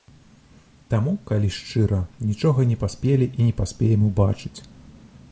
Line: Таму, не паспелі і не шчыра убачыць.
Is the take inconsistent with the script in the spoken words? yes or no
yes